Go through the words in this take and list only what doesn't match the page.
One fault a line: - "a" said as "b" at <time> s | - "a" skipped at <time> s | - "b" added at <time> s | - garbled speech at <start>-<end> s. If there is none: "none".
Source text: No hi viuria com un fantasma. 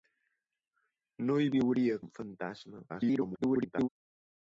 - "com" skipped at 2.0 s
- garbled speech at 2.9-3.9 s